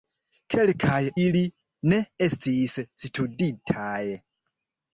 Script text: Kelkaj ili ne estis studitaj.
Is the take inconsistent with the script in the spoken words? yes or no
no